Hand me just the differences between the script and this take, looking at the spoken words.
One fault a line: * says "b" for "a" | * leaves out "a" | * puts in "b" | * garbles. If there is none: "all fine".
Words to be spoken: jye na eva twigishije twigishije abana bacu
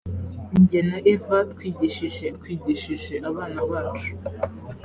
all fine